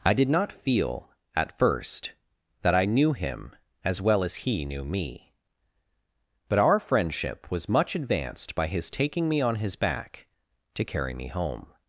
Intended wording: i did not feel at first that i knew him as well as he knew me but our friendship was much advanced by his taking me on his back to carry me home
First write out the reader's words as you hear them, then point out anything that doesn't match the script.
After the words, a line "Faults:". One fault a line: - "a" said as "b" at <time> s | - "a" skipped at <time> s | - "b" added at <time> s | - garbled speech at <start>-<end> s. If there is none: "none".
i did not feel at first that i knew him as well as he knew me but our friendship was much advanced by his taking me on his back to carry me home
Faults:
none